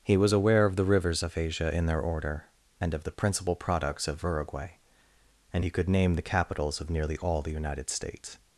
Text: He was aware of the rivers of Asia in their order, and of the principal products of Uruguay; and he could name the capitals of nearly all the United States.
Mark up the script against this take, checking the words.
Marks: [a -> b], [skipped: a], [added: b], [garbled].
He was aware of the rivers of Asia in their order, and of the principal products of Uruguay; and he could name the capitals of nearly all the United States.